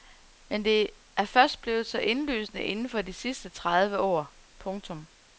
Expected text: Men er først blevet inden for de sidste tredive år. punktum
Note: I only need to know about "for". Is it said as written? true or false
true